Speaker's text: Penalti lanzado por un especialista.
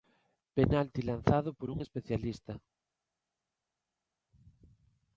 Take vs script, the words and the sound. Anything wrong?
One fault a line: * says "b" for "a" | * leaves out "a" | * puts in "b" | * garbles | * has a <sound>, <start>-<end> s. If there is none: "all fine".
all fine